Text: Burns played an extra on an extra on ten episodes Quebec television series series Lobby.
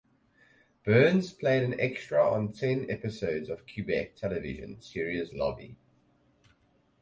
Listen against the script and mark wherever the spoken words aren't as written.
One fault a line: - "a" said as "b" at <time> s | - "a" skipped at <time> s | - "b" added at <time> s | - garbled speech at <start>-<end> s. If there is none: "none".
- "an extra on" skipped at 2.5 s
- "of" added at 3.5 s
- "series" skipped at 5.3 s